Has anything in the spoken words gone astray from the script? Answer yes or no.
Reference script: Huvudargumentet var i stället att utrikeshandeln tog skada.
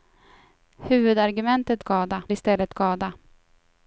yes